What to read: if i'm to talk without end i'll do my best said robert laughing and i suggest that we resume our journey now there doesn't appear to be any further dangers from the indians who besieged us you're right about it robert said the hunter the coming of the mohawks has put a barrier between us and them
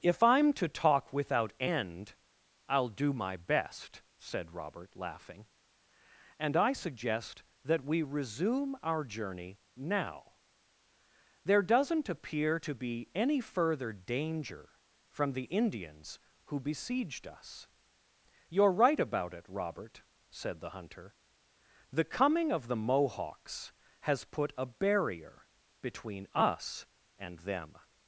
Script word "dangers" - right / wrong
wrong